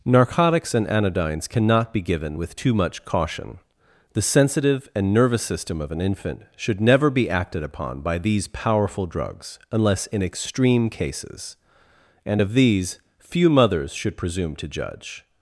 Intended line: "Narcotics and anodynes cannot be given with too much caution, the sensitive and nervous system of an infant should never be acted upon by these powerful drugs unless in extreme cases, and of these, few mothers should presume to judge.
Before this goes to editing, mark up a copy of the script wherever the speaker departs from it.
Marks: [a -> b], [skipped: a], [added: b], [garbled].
"Narcotics and anodynes cannot be given with too much caution, the sensitive and nervous system of an infant should never be acted upon by these powerful drugs unless in extreme cases, and of these, few mothers should presume to judge.